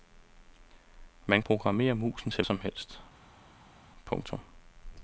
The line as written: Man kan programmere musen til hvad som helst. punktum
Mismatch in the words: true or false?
true